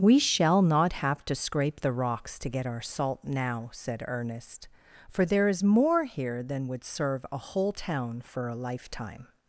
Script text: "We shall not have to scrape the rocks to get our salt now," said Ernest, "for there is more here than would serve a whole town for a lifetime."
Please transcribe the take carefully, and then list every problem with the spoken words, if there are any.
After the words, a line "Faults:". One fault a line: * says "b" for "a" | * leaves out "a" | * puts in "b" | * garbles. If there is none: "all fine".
"We shall not have to scrape the rocks to get our salt now," said Ernest, "for there is more here than would serve a whole town for a lifetime."
Faults:
all fine